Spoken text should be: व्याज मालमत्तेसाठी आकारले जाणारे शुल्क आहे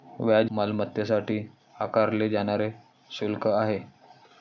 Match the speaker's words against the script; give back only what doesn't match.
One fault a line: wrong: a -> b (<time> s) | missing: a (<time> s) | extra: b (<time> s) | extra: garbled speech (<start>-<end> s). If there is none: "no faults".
no faults